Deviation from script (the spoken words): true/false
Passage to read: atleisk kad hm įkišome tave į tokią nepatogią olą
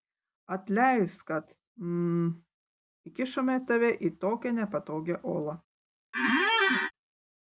false